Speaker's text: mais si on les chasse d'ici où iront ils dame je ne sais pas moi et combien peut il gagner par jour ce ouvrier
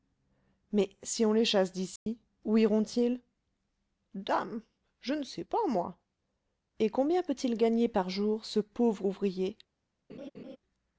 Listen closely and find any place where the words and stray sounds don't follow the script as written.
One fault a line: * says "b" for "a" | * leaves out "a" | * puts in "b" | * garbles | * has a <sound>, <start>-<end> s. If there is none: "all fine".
* has a dropout, 2.0-2.1 s
* puts in "pauvre"
* has a laugh, 10.1-10.6 s